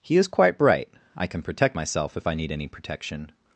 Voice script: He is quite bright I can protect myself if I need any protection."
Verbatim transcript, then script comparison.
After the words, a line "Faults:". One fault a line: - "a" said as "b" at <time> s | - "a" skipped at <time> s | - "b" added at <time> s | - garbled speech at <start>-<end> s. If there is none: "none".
He is quite bright I can protect myself if I need any protection."
Faults:
none